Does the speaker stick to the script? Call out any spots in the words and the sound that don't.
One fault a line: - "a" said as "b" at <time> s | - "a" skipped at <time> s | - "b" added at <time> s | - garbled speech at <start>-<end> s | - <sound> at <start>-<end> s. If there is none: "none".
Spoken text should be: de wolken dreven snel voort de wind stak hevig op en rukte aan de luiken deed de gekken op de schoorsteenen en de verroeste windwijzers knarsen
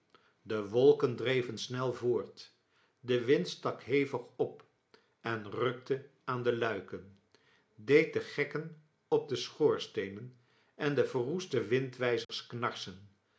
- dropout at 12.2-12.3 s